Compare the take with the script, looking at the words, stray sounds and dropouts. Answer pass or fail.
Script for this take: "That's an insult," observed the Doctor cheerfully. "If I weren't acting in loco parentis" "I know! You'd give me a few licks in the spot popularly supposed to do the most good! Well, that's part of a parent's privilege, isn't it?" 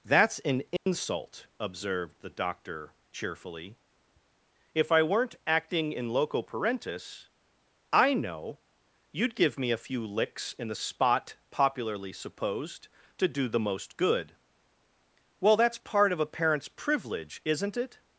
fail